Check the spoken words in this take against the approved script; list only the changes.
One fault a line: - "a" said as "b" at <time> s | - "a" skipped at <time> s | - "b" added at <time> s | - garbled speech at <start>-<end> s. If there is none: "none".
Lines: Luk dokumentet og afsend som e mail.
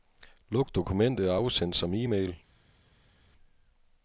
none